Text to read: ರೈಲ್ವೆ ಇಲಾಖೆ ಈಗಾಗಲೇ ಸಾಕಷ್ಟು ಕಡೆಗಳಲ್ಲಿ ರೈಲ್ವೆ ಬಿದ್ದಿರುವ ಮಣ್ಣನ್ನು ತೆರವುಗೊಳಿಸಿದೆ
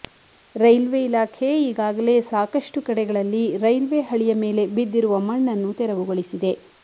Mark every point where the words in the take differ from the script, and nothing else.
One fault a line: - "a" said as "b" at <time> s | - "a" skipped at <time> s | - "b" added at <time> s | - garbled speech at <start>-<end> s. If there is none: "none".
- "ಹಳಿಯ ಮೇಲೆ" added at 4.1 s